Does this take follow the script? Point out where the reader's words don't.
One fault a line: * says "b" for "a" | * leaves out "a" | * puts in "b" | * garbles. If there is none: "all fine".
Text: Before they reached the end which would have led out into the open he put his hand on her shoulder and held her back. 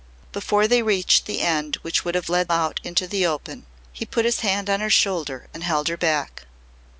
all fine